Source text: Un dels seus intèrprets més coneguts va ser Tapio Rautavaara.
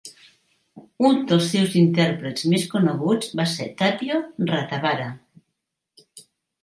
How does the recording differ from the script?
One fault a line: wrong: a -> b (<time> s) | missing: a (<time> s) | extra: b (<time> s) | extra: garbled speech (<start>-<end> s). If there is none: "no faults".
no faults